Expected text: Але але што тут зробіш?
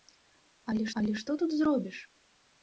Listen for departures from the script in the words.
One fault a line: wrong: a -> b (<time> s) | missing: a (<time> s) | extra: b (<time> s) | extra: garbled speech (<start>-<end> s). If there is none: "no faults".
no faults